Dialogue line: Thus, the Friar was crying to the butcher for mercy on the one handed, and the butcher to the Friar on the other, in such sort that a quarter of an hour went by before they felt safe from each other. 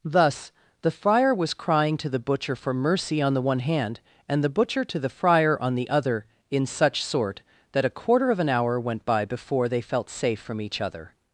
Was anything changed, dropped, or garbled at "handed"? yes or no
yes